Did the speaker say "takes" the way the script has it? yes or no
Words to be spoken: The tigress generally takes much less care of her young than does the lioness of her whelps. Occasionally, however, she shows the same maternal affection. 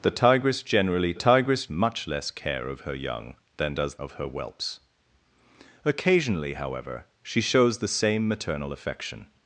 no